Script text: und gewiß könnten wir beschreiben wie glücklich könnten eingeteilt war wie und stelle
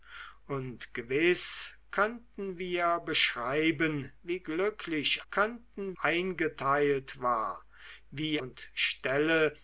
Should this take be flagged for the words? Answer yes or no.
no